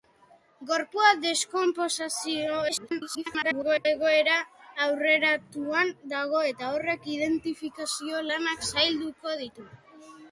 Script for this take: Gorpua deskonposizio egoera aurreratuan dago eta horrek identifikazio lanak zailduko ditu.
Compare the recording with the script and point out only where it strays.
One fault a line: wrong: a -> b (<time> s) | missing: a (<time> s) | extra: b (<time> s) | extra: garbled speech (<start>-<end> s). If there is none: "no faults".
extra: garbled speech (2.7-3.9 s)